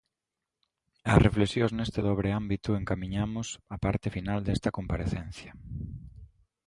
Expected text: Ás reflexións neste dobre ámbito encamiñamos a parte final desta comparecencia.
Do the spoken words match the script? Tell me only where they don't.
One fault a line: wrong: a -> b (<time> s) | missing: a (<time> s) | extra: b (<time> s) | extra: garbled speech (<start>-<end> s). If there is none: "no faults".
no faults